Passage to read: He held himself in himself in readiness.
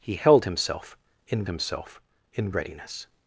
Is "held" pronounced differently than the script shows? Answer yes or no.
no